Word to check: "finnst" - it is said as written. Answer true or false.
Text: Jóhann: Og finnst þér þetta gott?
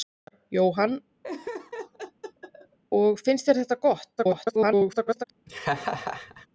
true